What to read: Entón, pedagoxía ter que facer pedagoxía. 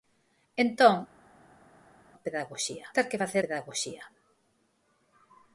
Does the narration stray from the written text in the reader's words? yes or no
no